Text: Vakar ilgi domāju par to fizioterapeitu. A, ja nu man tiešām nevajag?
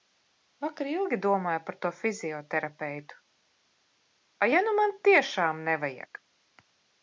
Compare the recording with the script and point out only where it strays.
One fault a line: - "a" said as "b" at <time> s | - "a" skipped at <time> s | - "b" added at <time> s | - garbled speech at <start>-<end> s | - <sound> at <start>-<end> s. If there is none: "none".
none